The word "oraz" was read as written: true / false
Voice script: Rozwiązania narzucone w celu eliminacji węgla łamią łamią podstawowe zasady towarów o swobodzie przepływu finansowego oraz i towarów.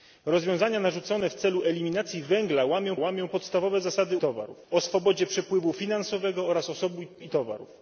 true